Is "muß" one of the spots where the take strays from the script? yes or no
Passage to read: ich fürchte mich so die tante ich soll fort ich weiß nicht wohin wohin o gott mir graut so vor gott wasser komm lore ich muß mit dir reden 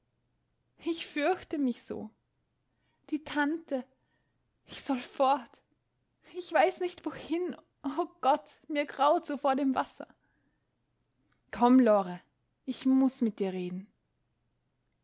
no